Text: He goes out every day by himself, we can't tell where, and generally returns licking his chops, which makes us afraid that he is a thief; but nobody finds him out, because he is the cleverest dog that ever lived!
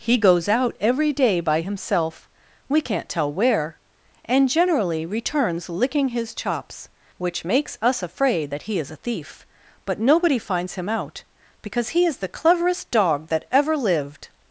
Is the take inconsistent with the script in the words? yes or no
no